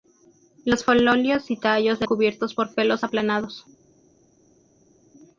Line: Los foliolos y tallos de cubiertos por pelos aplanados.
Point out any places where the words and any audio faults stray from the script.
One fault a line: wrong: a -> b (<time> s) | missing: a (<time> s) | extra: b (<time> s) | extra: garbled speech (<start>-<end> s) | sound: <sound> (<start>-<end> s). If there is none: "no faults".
no faults